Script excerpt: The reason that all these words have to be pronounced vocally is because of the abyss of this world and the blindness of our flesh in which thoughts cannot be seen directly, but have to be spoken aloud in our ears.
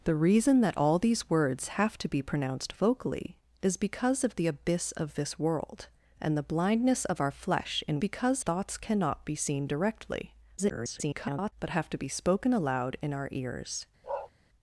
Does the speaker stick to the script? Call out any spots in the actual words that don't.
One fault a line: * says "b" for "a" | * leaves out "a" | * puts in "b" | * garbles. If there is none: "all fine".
* says "because" for "which"
* garbles